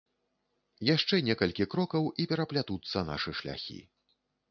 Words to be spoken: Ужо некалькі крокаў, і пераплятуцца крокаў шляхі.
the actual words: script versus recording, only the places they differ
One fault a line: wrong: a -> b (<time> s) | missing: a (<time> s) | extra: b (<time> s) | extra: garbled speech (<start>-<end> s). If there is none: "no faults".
wrong: Ужо -> Яшчэ (0.9 s)
wrong: крокаў -> нашы (3.1 s)